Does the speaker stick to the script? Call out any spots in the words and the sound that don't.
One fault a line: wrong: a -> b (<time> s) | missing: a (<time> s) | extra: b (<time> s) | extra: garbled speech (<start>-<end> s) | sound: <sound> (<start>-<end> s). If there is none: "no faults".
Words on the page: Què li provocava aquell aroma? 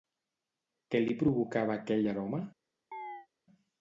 sound: chirp (2.9-3.3 s)